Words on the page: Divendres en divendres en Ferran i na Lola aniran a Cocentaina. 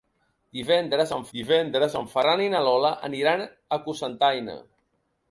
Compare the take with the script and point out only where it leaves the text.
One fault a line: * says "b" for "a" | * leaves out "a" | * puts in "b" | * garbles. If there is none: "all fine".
all fine